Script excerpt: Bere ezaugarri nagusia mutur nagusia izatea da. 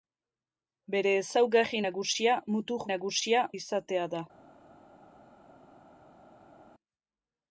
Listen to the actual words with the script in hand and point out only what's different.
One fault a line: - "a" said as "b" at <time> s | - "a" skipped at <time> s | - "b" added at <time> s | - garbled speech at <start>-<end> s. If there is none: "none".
none